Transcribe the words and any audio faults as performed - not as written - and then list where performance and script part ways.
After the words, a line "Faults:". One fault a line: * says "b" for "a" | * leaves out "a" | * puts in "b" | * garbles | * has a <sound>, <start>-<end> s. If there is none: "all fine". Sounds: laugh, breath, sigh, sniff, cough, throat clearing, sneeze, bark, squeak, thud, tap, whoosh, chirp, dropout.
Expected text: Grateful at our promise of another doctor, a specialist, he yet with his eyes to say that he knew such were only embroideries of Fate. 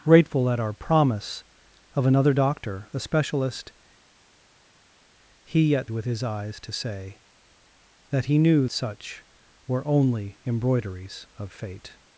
Grateful at our promise of another doctor, a specialist, he yet with his eyes to say that he knew such were only embroideries of Fate.
Faults:
all fine